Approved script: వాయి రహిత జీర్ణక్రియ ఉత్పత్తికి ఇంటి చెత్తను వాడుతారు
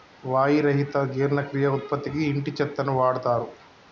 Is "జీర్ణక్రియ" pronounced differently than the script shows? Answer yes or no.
no